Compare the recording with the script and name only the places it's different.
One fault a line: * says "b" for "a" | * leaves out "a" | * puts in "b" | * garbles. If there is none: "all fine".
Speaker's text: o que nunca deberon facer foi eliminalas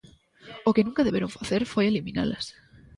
all fine